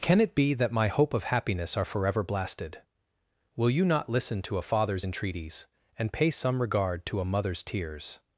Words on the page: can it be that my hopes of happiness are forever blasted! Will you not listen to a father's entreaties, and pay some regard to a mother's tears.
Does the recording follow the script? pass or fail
fail